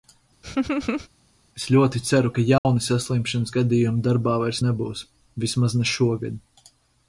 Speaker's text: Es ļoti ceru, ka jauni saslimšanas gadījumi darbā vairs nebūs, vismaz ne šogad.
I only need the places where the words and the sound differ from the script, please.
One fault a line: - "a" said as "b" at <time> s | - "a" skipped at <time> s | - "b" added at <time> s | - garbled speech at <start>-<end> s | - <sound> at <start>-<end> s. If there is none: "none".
- laugh at 0.4-1.1 s
- dropout at 2.6-2.7 s